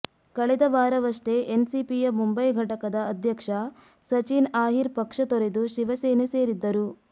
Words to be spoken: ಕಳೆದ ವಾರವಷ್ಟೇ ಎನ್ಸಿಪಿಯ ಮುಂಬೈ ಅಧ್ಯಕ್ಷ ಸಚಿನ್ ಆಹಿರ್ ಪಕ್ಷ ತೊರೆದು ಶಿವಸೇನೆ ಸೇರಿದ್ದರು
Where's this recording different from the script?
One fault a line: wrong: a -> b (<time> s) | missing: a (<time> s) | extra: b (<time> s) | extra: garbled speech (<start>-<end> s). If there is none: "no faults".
extra: ಘಟಕದ (2.5 s)